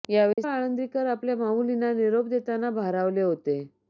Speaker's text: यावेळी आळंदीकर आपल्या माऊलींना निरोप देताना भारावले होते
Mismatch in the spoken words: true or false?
false